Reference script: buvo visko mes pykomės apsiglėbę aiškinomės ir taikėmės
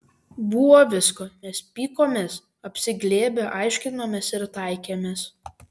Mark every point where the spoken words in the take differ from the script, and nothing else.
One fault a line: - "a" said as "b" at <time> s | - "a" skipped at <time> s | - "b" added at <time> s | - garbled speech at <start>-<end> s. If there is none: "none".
none